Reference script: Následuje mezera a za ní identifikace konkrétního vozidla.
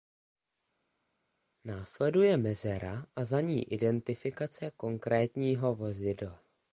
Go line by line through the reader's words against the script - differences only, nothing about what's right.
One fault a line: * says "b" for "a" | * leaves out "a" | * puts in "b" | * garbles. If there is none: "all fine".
all fine